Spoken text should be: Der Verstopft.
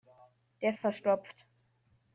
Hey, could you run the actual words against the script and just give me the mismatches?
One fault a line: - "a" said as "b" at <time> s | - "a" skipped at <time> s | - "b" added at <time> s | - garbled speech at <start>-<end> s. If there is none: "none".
none